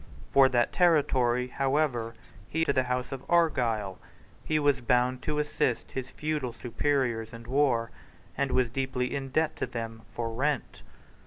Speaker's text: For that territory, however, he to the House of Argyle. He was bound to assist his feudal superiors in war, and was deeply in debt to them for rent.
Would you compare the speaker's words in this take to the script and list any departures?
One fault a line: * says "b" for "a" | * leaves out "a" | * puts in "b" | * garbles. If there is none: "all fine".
all fine